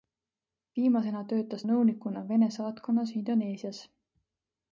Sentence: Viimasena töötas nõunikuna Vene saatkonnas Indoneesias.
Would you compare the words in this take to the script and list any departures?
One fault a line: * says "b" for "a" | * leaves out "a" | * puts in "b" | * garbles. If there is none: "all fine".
all fine